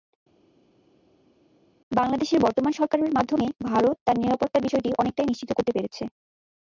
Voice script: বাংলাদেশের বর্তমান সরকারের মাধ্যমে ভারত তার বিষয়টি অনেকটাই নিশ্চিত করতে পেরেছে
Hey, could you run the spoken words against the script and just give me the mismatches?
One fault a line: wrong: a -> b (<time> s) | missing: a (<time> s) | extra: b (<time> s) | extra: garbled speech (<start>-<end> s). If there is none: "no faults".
extra: নিরাপত্তার (4.2 s)